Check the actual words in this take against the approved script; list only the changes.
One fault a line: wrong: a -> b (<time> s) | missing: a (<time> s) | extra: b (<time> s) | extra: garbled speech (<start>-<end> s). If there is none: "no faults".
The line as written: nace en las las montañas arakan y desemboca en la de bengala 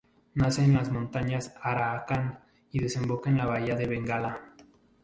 missing: las (0.9 s)
extra: bahía (3.4 s)